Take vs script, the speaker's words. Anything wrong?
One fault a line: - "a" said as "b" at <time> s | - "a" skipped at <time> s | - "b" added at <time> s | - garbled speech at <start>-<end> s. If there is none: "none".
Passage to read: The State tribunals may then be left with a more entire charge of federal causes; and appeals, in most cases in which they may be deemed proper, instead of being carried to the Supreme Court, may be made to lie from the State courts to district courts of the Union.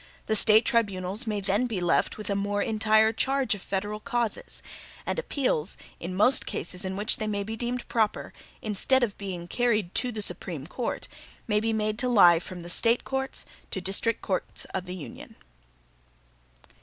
none